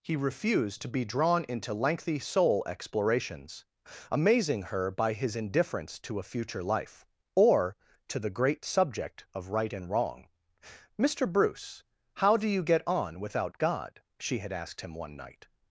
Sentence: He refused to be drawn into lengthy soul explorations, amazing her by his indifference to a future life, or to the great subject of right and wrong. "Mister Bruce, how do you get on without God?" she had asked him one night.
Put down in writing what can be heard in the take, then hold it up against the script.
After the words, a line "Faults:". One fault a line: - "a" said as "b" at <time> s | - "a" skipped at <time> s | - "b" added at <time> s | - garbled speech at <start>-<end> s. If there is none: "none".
He refused to be drawn into lengthy soul explorations, amazing her by his indifference to a future life, or to the great subject of right and wrong. "Mister Bruce, how do you get on without God?" she had asked him one night.
Faults:
none